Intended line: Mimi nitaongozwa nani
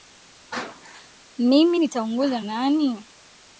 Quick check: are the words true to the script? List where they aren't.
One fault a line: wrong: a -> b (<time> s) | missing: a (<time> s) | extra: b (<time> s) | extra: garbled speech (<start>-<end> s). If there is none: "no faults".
no faults